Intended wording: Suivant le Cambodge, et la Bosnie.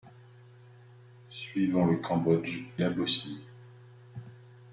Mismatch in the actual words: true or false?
true